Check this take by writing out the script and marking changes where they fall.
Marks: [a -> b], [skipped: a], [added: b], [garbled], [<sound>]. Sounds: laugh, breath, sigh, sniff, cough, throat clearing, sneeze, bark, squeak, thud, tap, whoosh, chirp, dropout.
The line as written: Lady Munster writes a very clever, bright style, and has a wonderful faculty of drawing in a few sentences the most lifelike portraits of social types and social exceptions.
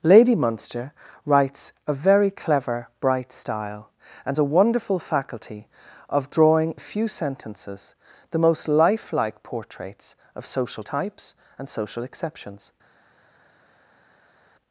Lady Munster writes a very clever, bright style, and [skipped: has] a wonderful faculty of drawing [skipped: in] a few sentences the most lifelike portraits of social types and social exceptions.